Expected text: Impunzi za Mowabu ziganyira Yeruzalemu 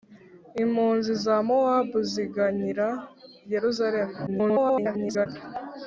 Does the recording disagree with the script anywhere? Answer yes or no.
yes